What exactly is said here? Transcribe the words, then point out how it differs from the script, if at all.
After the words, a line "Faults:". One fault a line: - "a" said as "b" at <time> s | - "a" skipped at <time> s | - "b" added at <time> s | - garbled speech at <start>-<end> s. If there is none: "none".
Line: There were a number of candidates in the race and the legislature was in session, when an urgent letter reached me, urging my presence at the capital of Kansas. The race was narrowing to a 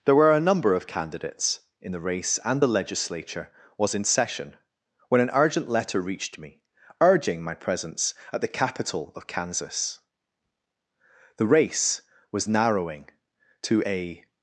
There were a number of candidates in the race and the legislature was in session, when an urgent letter reached me, urging my presence at the capital of Kansas. The race was narrowing to a
Faults:
none